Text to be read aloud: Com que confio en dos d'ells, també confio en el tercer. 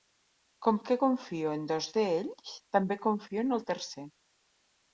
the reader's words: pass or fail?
pass